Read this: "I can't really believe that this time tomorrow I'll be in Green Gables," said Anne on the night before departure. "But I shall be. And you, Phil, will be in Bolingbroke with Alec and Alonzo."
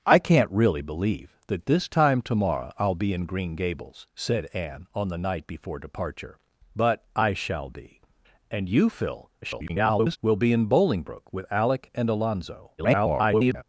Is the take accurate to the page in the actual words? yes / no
no